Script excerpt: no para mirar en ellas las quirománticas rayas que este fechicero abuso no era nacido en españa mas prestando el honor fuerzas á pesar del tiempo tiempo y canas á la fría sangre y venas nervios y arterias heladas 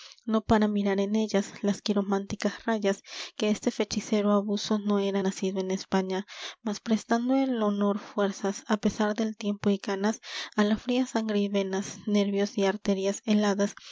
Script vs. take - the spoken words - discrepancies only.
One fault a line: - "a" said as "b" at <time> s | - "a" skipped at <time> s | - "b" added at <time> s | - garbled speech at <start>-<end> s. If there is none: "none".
- "tiempo" skipped at 9.7 s